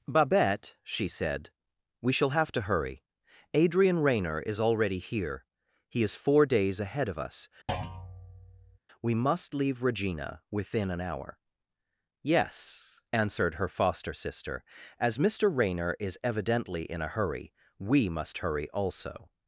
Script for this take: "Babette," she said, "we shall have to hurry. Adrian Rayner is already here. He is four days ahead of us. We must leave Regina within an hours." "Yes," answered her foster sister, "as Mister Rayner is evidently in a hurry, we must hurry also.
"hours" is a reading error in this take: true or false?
true